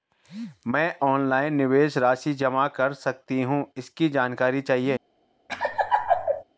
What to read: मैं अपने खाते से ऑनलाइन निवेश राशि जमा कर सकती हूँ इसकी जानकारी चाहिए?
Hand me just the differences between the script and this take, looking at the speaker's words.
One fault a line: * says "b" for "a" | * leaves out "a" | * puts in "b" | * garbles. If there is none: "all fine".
* leaves out "अपने खाते से"